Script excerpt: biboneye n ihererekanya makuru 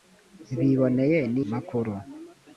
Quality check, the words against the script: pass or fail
fail